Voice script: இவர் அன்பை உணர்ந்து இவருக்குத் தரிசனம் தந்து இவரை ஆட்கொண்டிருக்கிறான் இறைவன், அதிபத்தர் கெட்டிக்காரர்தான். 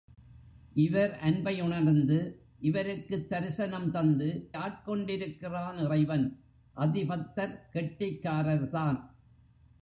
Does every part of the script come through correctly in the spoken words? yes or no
no